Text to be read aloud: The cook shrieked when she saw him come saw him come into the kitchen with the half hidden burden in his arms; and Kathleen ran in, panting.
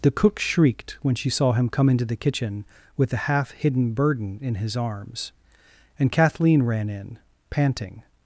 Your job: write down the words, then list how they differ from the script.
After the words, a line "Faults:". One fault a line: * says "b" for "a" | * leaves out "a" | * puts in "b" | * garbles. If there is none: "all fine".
The cook shrieked when she saw him come into the kitchen with the half hidden burden in his arms; and Kathleen ran in, panting.
Faults:
* leaves out "saw him come"